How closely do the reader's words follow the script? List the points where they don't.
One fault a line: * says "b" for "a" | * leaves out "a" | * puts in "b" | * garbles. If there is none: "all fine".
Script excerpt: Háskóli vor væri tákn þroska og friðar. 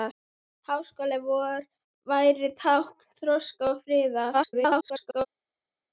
* garbles